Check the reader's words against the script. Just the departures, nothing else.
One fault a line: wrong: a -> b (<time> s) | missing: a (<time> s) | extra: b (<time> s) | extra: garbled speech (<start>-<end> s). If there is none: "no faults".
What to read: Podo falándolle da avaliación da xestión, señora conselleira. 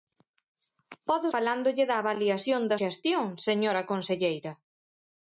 no faults